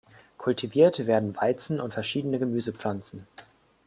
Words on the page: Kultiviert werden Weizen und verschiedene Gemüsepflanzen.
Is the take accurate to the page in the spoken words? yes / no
yes